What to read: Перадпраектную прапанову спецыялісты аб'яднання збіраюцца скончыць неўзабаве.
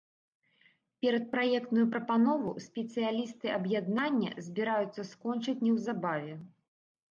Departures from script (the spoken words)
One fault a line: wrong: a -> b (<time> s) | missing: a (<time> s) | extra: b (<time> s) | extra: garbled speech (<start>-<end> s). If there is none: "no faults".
no faults